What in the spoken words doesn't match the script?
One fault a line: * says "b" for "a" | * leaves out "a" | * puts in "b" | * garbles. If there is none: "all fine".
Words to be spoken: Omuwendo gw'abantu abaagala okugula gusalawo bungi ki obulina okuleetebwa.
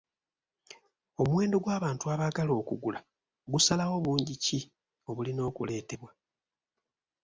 all fine